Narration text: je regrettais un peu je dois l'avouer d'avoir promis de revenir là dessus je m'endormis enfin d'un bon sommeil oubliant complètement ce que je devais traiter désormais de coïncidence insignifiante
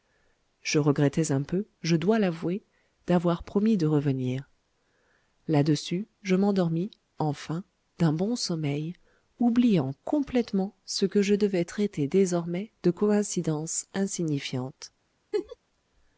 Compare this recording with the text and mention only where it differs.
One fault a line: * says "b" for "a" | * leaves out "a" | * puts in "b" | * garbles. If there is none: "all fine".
all fine